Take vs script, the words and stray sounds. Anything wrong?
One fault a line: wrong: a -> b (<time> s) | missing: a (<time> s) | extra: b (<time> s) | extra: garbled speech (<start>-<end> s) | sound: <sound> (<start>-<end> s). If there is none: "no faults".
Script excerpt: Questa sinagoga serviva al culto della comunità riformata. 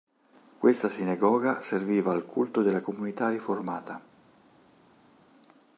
no faults